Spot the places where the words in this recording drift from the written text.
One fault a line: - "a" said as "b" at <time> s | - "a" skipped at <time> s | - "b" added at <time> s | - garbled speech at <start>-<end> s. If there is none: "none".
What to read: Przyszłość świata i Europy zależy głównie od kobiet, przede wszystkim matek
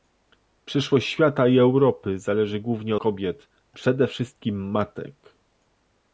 - "od" skipped at 3.0 s